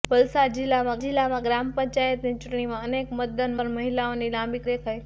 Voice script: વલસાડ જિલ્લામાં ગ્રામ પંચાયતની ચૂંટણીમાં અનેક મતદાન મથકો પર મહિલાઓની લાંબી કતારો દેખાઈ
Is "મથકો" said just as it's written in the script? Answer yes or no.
no